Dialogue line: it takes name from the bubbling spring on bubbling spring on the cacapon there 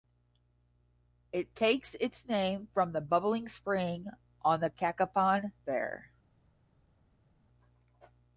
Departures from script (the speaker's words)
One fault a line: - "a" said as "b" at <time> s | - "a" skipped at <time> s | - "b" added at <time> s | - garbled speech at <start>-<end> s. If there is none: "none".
- "its" added at 2.0 s
- "bubbling spring on" skipped at 4.6 s